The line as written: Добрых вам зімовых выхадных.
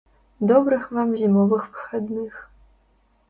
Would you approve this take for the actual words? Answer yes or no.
yes